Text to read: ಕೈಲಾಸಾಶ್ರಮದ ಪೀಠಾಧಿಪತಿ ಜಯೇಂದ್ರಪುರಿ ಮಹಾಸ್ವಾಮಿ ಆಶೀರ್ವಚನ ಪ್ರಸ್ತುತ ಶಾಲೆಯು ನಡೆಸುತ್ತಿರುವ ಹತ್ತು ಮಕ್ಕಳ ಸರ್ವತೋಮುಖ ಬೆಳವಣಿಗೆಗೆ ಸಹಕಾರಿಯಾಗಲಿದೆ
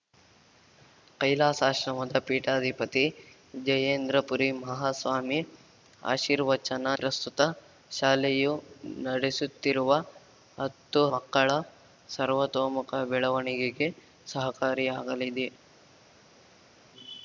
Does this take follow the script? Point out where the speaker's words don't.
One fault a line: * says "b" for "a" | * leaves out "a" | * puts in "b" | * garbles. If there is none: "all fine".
all fine